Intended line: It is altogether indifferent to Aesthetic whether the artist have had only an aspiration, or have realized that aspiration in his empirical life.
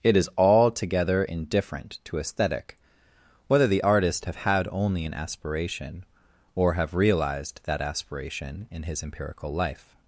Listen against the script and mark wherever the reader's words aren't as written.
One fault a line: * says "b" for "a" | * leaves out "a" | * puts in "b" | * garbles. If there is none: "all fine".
all fine